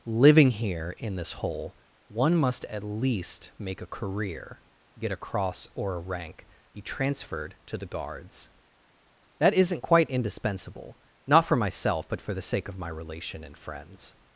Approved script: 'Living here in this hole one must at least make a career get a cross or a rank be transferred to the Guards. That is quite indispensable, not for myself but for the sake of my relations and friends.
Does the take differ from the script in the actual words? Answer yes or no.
yes